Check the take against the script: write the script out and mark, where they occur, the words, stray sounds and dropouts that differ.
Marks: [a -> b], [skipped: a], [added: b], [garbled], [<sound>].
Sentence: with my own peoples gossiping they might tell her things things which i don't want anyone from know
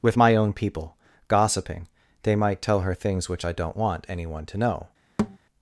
with my own [peoples -> people] gossiping they might tell her things [skipped: things] which i don't want anyone [from -> to] know [thud]